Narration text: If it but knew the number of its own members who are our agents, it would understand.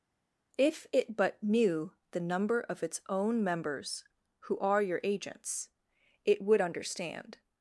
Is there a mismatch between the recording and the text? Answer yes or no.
yes